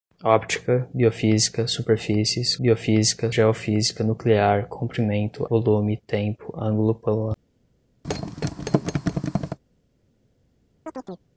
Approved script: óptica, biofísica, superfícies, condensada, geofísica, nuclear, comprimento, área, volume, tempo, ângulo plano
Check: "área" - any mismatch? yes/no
yes